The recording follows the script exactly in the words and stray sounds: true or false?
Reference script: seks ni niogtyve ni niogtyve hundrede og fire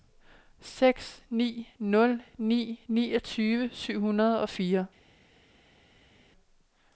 false